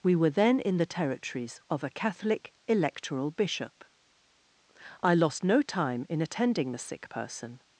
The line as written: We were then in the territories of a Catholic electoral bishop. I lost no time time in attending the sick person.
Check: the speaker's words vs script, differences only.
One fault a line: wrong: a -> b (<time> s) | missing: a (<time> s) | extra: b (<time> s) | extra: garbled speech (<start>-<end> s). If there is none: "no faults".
missing: time (6.1 s)